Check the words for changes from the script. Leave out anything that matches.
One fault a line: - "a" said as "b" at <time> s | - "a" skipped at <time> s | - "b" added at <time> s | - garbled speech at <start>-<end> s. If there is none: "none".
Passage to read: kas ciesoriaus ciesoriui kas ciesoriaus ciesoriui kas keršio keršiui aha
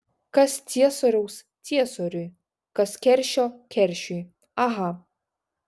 - "ciesoriaus ciesoriui kas" skipped at 3.0 s